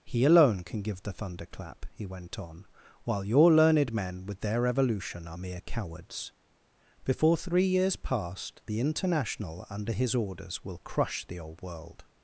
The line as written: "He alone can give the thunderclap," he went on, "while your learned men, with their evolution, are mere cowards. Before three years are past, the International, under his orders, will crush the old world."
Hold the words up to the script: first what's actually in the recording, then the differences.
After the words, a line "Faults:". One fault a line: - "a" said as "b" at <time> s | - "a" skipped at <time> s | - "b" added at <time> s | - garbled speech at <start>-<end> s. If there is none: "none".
"He alone can give the thunderclap," he went on, "while your learned men, with their evolution, are mere cowards. Before three years past, the International, under his orders, will crush the old world."
Faults:
- "are" skipped at 8.0 s